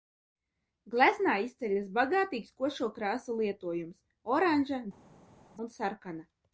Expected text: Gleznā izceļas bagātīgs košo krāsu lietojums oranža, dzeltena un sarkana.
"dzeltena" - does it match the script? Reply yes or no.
no